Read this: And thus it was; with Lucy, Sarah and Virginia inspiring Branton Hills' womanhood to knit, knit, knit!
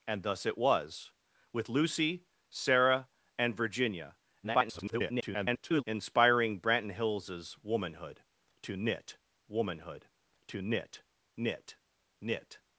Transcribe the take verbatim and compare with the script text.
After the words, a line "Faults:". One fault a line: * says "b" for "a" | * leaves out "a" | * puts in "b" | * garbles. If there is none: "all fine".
And thus it was; with Lucy, Sarah and Virginia [garbled] inspiring Branton Hills' womanhood to knit womanhood to knit, knit, knit!
Faults:
* garbles
* puts in "womanhood to knit"